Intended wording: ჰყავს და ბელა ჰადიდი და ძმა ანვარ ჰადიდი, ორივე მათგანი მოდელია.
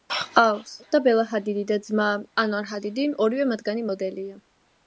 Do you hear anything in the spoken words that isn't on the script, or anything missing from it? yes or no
no